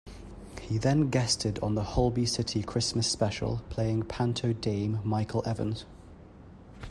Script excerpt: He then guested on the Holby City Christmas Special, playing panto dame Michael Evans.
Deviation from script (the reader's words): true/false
false